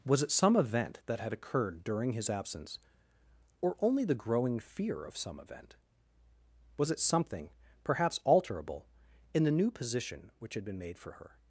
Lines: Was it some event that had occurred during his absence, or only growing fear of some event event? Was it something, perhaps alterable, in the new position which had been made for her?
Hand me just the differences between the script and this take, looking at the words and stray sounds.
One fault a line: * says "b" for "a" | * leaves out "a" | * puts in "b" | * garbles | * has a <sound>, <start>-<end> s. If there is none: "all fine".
* puts in "the"
* leaves out "event"